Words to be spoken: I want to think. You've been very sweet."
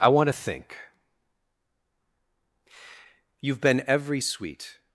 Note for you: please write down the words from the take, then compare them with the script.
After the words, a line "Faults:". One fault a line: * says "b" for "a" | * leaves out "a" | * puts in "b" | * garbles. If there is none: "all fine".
I want to think. You've been every sweet."
Faults:
* says "every" for "very"